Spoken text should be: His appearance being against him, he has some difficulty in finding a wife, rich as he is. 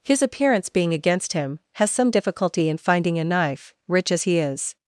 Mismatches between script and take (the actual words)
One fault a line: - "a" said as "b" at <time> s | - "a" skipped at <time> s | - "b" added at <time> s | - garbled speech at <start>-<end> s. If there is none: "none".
- "he" skipped at 1.6 s
- "wife" said as "knife" at 3.2 s